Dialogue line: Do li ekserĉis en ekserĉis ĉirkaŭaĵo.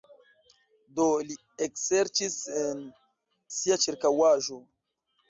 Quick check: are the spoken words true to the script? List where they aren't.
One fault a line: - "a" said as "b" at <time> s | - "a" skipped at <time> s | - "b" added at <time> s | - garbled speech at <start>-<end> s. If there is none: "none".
- "ekserĉis" said as "sia" at 3.6 s